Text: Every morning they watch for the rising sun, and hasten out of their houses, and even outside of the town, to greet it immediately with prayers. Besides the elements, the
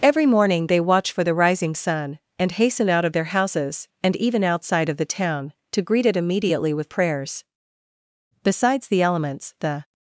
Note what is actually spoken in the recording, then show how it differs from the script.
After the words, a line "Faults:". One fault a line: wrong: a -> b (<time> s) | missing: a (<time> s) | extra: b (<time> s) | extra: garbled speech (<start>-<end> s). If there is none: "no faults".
Every morning they watch for the rising sun, and hasten out of their houses, and even outside of the town, to greet it immediately with prayers. Besides the elements, the
Faults:
no faults